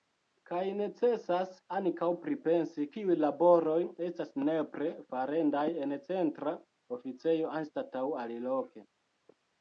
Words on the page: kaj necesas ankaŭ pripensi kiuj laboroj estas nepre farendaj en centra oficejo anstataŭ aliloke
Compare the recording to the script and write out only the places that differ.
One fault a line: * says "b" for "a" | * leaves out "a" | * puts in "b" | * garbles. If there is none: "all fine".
all fine